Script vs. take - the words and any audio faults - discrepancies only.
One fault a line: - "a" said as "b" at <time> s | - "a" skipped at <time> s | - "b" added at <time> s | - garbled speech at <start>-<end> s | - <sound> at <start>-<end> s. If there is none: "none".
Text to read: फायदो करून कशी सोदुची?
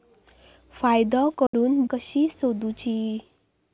- dropout at 1.5-1.5 s